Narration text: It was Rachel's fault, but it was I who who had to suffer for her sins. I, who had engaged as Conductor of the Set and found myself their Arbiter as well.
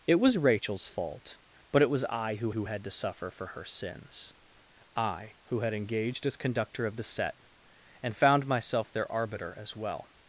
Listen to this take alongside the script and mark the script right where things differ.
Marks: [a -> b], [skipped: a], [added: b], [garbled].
It was Rachel's fault, but it was I who who had to suffer for her sins. I, who had engaged as Conductor of the Set and found myself their Arbiter as well.